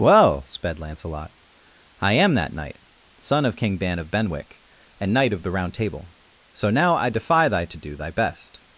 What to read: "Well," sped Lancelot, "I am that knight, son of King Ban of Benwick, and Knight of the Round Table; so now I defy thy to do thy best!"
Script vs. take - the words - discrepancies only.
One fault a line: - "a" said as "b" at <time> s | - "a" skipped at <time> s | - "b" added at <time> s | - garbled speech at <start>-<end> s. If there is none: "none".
none